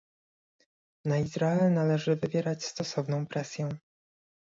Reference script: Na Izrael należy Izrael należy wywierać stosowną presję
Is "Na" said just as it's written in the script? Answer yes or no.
yes